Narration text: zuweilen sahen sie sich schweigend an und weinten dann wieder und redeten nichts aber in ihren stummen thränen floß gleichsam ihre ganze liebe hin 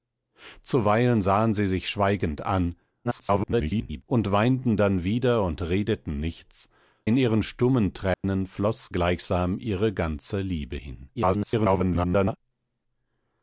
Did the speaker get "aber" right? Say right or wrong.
wrong